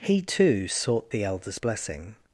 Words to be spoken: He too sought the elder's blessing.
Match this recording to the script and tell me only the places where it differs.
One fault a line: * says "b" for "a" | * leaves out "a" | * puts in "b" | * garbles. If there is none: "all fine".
all fine